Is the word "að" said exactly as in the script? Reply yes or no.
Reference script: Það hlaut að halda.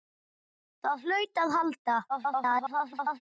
yes